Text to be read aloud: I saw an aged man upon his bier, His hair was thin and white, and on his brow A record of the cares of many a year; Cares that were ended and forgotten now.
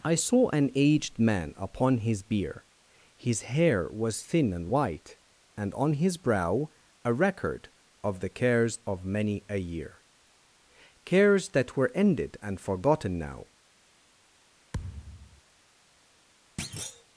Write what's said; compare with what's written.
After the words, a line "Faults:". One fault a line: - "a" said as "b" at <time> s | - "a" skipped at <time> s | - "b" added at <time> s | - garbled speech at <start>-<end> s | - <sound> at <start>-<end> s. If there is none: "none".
I saw an aged man upon his bier, His hair was thin and white, and on his brow A record of the cares of many a year; Cares that were ended and forgotten now.
Faults:
- thud at 14.7-15.4 s
- thud at 16.6-17.0 s